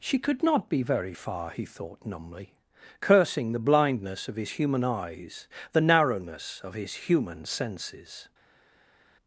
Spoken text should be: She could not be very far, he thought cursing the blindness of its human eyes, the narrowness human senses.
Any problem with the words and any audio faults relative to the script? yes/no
yes